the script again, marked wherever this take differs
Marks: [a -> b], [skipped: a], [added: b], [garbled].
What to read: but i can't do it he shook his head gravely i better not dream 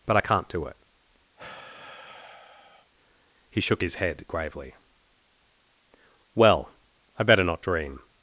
but i can't do it he shook his head gravely [added: well] i better not dream